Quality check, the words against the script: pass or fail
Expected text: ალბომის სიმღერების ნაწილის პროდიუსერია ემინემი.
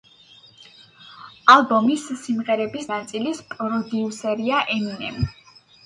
pass